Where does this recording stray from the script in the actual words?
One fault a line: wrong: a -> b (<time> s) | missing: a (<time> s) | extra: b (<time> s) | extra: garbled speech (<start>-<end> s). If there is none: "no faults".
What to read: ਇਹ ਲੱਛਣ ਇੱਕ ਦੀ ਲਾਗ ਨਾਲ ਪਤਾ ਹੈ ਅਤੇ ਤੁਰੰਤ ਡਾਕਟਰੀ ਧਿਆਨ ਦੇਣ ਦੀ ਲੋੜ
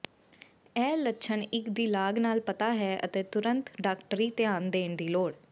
no faults